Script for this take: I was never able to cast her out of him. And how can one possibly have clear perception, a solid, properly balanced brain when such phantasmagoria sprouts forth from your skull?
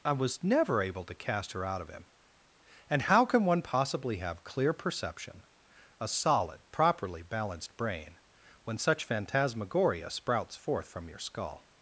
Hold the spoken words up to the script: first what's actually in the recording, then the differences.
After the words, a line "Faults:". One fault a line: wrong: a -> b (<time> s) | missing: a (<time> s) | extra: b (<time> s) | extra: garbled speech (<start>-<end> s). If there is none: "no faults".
I was never able to cast her out of him. And how can one possibly have clear perception, a solid, properly balanced brain when such phantasmagoria sprouts forth from your skull?
Faults:
no faults